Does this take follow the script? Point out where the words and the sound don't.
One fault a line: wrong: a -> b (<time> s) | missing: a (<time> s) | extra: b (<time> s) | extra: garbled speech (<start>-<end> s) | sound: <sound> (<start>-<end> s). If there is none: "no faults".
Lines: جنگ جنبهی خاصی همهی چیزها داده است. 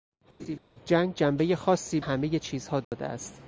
sound: laugh (0.4-0.6 s)
sound: dropout (2.8-2.9 s)